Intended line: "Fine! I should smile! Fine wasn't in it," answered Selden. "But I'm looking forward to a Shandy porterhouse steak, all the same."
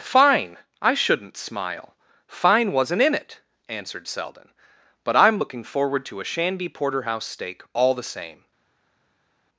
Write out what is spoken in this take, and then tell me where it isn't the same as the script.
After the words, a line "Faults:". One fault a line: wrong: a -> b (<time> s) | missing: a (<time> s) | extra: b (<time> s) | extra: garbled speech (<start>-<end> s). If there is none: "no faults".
"Fine! I shouldn't smile! Fine wasn't in it," answered Selden. "But I'm looking forward to a Shandy porterhouse steak, all the same."
Faults:
wrong: should -> shouldn't (0.9 s)